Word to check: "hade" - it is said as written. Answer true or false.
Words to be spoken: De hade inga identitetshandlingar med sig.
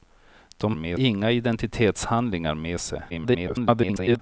false